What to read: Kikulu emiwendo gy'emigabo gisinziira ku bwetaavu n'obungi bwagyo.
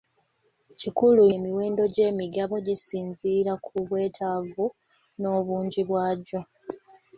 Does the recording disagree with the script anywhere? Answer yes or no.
no